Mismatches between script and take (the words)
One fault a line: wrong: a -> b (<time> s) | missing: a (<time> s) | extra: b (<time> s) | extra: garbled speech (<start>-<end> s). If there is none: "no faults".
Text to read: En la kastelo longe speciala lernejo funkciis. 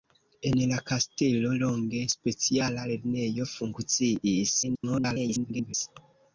extra: garbled speech (4.6-5.7 s)